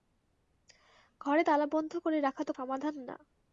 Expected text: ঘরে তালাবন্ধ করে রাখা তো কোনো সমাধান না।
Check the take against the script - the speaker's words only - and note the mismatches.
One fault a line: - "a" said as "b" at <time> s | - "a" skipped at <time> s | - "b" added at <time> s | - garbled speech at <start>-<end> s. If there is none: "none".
- "কোনো" skipped at 2.5 s